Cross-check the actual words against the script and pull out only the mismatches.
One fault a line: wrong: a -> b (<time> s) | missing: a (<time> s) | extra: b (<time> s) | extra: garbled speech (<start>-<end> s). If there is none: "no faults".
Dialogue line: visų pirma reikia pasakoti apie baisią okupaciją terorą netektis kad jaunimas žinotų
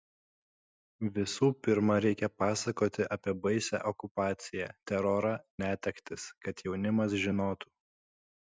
no faults